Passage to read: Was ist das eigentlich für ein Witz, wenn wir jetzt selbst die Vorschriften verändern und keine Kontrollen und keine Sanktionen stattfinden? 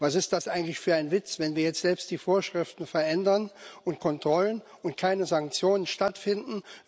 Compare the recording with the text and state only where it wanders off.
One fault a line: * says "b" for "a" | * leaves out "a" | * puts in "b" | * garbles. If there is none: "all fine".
* leaves out "keine"